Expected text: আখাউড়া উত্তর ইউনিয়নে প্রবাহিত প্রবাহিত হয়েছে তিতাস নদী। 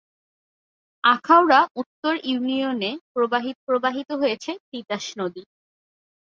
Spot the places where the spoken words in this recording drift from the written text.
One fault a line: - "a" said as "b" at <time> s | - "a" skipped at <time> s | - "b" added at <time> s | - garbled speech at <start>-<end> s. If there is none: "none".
none